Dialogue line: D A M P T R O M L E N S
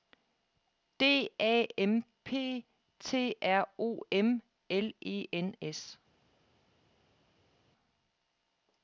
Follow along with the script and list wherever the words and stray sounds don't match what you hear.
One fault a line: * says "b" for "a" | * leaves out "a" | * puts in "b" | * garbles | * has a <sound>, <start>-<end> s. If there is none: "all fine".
all fine